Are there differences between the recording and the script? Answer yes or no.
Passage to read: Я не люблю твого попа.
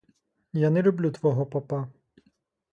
no